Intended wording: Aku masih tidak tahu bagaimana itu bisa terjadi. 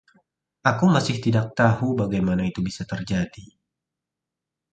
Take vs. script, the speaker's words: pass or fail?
pass